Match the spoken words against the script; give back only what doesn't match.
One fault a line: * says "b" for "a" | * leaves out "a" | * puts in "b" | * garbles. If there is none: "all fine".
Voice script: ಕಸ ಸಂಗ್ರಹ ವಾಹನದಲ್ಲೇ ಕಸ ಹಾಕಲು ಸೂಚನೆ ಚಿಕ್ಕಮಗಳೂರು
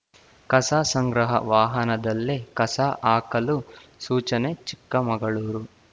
all fine